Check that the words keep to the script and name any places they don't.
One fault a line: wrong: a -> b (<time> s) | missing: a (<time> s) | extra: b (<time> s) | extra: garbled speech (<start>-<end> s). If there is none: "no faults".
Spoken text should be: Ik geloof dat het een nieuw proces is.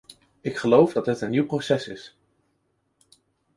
no faults